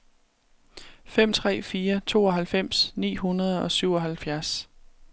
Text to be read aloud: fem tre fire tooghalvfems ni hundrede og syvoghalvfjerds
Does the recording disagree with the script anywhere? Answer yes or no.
no